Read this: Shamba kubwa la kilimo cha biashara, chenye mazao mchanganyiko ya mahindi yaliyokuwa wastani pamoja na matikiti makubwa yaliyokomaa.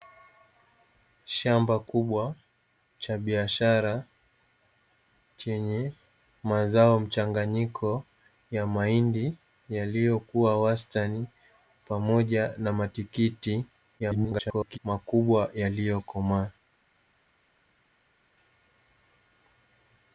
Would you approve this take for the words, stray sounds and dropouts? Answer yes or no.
no